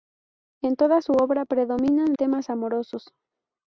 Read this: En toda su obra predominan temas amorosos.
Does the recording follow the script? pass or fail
pass